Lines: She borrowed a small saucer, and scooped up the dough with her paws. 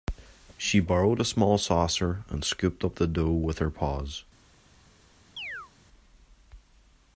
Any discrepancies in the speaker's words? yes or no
no